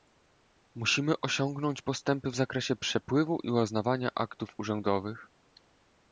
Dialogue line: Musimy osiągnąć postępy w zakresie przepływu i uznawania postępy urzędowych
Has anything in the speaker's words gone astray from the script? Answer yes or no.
yes